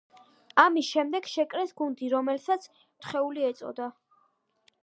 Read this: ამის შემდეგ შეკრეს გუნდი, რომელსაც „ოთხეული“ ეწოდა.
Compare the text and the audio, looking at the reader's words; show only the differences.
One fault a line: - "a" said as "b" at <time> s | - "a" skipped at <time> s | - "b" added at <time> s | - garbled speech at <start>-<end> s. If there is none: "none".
none